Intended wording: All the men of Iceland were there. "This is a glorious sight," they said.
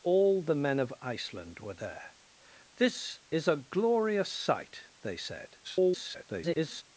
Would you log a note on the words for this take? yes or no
yes